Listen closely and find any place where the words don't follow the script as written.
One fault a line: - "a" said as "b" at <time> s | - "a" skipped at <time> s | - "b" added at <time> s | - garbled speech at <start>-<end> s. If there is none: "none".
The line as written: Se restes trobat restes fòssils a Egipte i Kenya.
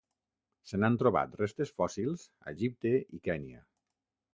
- "restes" said as "n'han" at 0.8 s